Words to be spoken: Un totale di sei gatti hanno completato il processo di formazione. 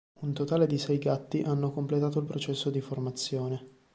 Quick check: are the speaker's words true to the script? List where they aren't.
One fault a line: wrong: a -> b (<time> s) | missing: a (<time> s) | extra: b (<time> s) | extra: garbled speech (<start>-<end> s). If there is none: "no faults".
no faults